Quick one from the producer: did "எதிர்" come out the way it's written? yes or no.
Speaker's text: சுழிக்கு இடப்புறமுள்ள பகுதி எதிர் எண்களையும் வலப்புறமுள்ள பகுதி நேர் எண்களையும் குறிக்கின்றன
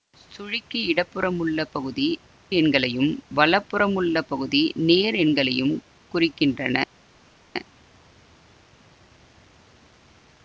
no